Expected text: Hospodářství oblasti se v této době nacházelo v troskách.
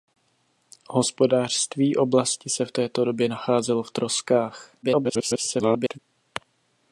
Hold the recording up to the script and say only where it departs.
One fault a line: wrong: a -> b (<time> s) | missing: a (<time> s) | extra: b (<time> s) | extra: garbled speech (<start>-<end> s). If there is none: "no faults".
extra: garbled speech (4.8-6.0 s)